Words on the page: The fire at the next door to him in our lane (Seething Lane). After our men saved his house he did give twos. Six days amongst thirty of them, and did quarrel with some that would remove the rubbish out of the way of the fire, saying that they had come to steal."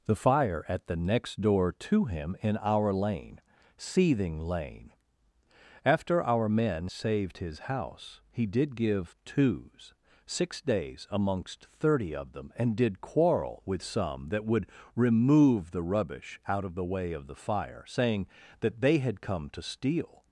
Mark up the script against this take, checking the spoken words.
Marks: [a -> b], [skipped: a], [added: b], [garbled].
The fire at the next door to him in our lane (Seething Lane). After our men saved his house he did give twos. Six days amongst thirty of them, and did quarrel with some that would remove the rubbish out of the way of the fire, saying that they had come to steal."